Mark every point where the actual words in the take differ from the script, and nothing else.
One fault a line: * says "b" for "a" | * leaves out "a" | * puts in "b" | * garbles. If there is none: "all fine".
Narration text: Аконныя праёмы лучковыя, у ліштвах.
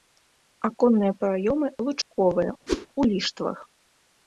all fine